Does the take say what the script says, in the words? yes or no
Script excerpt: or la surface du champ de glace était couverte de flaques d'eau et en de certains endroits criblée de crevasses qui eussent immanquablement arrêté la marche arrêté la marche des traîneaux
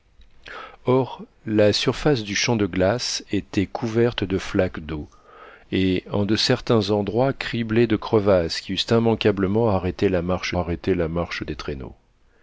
yes